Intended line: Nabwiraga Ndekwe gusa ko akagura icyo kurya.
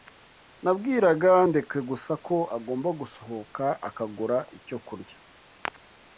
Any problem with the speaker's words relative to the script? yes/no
yes